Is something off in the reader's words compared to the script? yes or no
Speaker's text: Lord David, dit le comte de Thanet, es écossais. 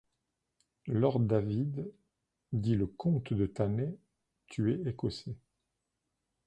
yes